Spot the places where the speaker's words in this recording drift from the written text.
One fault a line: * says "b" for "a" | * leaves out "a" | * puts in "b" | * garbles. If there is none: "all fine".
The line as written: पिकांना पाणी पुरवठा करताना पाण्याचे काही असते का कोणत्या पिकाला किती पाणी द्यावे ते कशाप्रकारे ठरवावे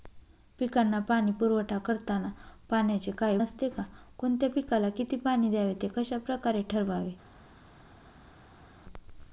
all fine